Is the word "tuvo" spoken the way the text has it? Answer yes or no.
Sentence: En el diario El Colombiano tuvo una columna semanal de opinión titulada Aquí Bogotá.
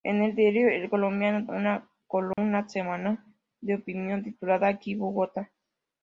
no